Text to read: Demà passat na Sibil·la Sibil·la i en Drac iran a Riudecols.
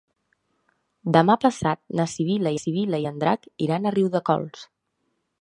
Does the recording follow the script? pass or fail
pass